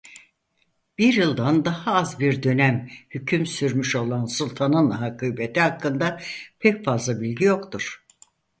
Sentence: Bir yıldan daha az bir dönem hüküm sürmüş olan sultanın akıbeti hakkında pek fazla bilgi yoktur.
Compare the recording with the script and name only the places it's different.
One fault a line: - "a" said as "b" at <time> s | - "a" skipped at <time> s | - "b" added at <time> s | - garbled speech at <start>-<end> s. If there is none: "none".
none